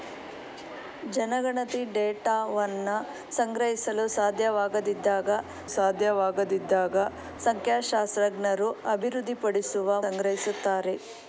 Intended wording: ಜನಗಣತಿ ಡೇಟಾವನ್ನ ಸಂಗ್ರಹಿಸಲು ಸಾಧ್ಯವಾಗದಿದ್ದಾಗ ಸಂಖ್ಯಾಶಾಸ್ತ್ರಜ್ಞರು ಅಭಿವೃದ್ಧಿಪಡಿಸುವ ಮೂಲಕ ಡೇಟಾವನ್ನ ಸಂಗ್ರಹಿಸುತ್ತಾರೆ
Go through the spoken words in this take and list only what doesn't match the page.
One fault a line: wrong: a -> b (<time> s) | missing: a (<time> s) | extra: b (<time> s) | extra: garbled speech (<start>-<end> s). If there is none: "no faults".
extra: ಸಾಧ್ಯವಾಗದಿದ್ದಾಗ (5.7 s)
missing: ಮೂಲಕ ಡೇಟಾವನ್ನ (10.0 s)